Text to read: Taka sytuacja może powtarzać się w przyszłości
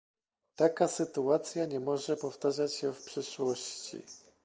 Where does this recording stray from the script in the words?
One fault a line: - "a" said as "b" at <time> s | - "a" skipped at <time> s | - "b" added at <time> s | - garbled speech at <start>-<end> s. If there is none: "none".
- "nie" added at 1.6 s